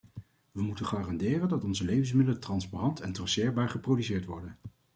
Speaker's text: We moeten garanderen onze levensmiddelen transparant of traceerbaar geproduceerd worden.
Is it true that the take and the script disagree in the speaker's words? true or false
true